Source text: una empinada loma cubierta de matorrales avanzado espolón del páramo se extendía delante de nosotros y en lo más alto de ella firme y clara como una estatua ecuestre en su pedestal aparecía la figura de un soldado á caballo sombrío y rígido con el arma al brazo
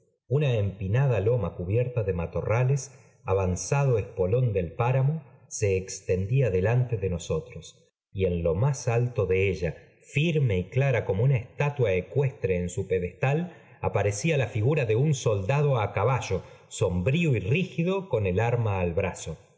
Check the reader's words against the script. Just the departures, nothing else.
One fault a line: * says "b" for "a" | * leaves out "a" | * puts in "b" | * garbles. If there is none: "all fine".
all fine